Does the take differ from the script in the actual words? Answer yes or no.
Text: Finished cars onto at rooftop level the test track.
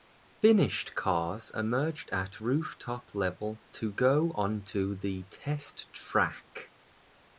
yes